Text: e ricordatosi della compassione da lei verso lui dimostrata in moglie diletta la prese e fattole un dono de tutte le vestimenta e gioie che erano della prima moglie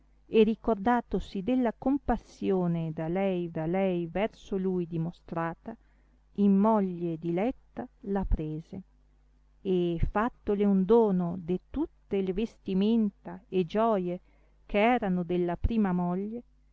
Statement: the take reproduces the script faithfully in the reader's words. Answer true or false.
false